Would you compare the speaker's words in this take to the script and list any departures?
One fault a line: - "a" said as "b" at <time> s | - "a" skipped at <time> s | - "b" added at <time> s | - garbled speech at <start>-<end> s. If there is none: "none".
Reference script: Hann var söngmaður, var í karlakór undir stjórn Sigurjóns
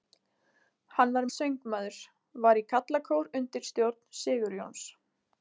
none